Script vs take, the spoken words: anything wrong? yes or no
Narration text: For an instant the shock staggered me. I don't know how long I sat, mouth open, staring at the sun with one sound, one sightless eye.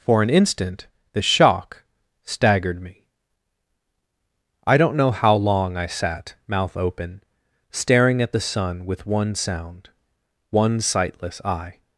no